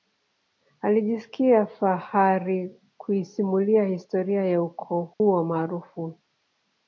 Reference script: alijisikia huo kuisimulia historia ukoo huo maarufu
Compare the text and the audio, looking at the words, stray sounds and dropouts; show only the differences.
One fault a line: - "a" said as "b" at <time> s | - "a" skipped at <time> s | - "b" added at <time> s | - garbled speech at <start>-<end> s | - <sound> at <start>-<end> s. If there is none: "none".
- "huo" said as "fahari" at 1.6 s
- "ya" added at 4.5 s
- dropout at 5.1-5.2 s